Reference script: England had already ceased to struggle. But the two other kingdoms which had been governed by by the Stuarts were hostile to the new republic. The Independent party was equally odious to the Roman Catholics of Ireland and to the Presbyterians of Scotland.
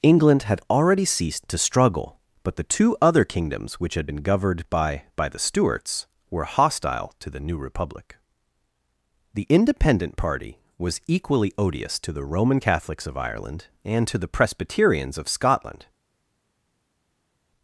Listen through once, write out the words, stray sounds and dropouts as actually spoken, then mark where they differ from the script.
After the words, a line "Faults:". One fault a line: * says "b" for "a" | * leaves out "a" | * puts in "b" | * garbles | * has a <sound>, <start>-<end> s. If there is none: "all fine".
England had already ceased to struggle. But the two other kingdoms which had been governed by by the Stuarts were hostile to the new republic. The Independent party was equally odious to the Roman Catholics of Ireland and to the Presbyterians of Scotland.
Faults:
all fine